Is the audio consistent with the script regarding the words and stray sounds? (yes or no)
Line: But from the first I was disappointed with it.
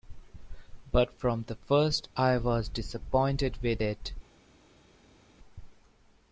yes